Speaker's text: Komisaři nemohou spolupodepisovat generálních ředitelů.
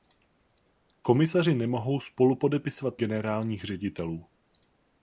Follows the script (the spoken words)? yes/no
yes